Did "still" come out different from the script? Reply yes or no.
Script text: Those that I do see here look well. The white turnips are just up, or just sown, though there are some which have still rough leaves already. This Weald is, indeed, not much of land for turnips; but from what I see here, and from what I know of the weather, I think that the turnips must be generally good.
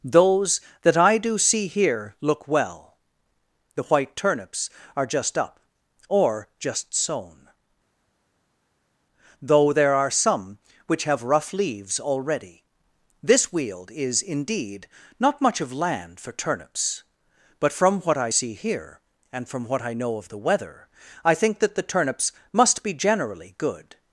yes